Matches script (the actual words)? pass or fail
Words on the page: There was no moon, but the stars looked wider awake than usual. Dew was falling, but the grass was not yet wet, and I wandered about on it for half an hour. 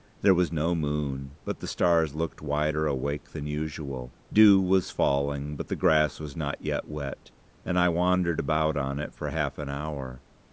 pass